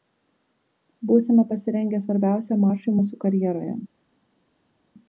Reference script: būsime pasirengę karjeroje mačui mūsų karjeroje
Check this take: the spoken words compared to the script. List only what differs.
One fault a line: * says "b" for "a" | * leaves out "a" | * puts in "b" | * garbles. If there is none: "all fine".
* says "svarbiausiam" for "karjeroje"